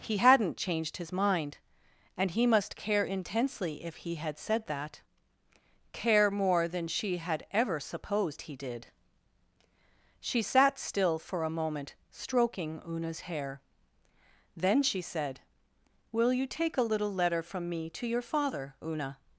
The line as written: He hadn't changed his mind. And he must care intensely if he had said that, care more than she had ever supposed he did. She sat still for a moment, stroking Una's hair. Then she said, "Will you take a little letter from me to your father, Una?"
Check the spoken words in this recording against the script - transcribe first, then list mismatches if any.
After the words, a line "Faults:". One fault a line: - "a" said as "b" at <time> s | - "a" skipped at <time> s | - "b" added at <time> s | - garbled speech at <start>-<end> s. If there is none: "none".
He hadn't changed his mind. And he must care intensely if he had said that, care more than she had ever supposed he did. She sat still for a moment, stroking Una's hair. Then she said, "Will you take a little letter from me to your father, Una?"
Faults:
none